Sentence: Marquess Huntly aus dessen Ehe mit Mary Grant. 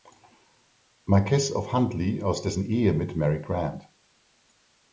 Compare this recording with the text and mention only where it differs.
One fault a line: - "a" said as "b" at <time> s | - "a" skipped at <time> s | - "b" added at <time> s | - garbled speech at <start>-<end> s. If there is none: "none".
- "of" added at 1.5 s